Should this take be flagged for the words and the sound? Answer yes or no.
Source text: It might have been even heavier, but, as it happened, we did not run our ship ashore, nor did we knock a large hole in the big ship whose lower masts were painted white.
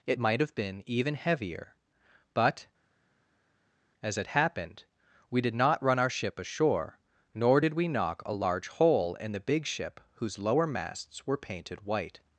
no